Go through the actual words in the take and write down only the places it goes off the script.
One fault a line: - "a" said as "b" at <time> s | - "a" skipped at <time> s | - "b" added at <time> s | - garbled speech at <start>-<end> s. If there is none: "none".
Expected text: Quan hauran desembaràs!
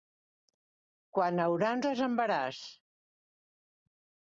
none